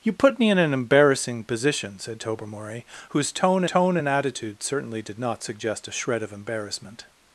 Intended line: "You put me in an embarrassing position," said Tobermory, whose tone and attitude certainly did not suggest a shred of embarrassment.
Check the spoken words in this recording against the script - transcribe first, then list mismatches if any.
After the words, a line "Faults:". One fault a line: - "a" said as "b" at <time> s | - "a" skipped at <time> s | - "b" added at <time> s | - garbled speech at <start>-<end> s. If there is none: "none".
"You put me in an embarrassing position," said Tobermory, whose tone tone and attitude certainly did not suggest a shred of embarrassment.
Faults:
- "tone" added at 3.6 s